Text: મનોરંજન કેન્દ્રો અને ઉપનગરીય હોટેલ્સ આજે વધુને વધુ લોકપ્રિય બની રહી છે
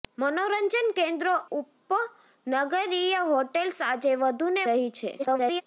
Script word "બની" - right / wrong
wrong